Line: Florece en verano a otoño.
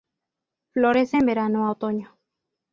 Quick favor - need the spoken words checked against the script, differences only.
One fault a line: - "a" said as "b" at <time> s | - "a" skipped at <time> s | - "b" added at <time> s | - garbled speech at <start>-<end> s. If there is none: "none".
none